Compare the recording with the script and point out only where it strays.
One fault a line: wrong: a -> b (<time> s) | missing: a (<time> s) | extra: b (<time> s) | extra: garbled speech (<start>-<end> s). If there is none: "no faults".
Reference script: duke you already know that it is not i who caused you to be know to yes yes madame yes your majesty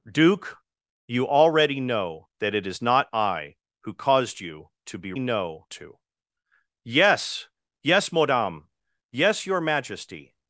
no faults